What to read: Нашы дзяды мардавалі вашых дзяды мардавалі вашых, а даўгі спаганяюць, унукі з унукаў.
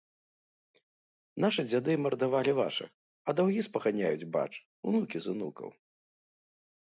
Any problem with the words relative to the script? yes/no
yes